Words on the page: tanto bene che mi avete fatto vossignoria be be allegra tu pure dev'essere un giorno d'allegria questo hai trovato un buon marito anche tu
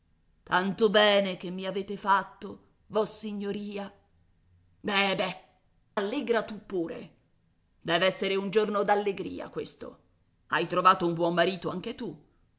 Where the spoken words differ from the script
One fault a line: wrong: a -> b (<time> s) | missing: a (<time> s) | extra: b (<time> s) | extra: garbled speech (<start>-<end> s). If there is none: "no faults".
no faults